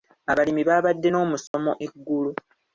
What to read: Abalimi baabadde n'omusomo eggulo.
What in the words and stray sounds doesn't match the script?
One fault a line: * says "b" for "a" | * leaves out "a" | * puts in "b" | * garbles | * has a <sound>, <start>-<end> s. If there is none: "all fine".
* has a dropout, 1.5-1.5 s